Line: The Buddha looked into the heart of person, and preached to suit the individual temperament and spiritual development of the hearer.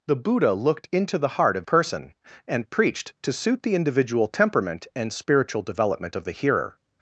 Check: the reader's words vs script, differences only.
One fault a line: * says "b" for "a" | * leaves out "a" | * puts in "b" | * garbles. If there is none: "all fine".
all fine